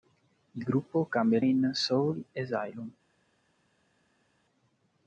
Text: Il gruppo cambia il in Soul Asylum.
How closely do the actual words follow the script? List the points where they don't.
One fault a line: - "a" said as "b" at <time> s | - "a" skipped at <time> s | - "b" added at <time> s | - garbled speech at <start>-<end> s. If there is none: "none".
none